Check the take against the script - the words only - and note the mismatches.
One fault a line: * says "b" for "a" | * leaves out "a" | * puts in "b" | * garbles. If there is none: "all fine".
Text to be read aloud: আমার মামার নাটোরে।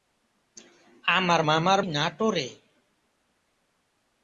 all fine